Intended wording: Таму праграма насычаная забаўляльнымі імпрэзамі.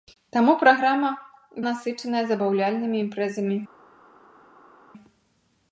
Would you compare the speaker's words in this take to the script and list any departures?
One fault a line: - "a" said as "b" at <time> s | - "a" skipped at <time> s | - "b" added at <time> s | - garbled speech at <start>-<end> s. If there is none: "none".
none